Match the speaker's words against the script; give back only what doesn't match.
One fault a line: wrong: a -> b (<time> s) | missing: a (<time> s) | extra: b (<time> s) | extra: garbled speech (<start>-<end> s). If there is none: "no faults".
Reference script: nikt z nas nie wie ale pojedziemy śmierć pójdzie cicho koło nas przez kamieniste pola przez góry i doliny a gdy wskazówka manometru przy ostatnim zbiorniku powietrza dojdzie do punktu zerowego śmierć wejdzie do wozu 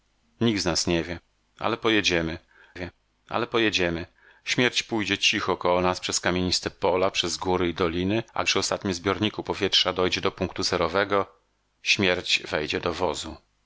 extra: wie ale pojedziemy (2.7 s)
missing: gdy wskazówka manometru (8.4 s)